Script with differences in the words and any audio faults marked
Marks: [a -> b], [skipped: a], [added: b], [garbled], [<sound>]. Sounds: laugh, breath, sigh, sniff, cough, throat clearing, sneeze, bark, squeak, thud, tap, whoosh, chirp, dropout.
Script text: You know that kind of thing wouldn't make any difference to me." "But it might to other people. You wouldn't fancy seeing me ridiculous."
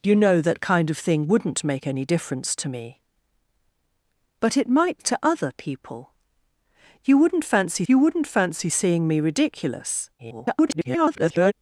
You know that kind of thing wouldn't make any difference to me." "But it might to other people. You wouldn't fancy [added: you wouldn't fancy] seeing me ridiculous." [garbled]